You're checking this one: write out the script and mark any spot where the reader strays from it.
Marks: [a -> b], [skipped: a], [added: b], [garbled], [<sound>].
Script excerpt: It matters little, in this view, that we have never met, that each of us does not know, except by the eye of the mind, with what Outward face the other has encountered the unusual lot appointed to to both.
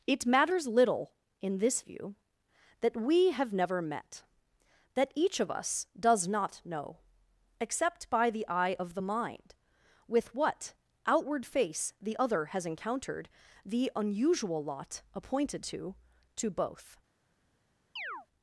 It matters little, in this view, that we have never met, that each of us does not know, except by the eye of the mind, with what Outward face the other has encountered the unusual lot appointed to to both. [chirp]